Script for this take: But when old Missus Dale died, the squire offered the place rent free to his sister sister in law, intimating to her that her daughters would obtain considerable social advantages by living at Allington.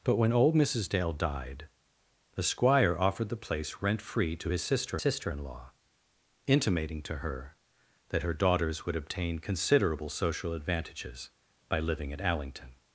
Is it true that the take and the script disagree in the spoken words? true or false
false